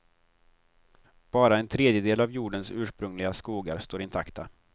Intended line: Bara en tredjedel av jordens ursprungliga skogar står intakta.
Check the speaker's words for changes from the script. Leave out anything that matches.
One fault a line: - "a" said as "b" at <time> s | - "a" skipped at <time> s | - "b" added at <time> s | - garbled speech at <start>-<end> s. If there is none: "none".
none